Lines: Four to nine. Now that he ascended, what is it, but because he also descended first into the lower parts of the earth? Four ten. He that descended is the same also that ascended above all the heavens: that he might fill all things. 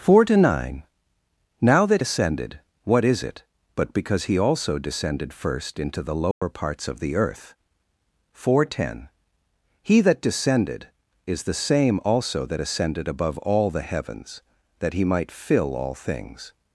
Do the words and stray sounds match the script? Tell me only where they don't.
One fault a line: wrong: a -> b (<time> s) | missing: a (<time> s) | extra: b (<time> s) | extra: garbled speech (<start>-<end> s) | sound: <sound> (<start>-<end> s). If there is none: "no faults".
missing: he (2.0 s)
sound: dropout (6.3-6.4 s)